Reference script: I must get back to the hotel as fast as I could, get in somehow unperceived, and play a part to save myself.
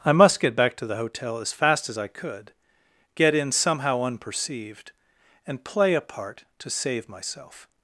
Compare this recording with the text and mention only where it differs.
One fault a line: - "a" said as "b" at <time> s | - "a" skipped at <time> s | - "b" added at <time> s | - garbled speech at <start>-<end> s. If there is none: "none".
none